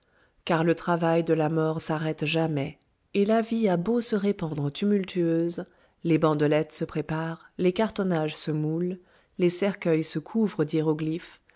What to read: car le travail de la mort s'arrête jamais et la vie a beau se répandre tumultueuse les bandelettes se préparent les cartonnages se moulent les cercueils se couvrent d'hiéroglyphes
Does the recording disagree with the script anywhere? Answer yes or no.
no